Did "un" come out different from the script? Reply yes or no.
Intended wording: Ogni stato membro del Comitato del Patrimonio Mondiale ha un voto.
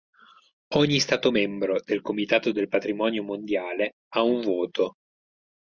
no